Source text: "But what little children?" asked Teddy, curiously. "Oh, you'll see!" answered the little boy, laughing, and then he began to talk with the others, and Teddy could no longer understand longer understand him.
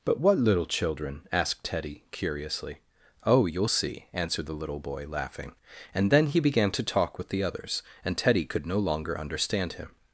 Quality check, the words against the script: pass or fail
fail